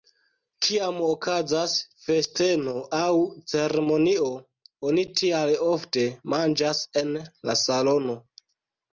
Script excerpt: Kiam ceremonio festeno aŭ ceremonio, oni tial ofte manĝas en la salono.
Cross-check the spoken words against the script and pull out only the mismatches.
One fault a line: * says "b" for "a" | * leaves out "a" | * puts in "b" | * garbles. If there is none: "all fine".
* says "okazas" for "ceremonio"